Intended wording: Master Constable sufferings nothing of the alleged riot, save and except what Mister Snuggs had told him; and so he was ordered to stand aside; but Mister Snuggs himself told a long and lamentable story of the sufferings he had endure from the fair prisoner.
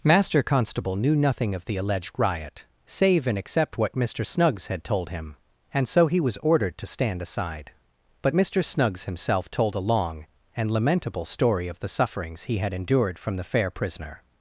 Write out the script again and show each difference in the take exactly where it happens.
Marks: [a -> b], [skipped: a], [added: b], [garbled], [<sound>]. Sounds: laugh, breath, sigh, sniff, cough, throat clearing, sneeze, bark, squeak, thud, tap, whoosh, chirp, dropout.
Master Constable [sufferings -> knew] nothing of the alleged riot, save and except what Mister Snuggs had told him; and so he was ordered to stand aside; but Mister Snuggs himself told a long and lamentable story of the sufferings he had [endure -> endured] from the fair prisoner.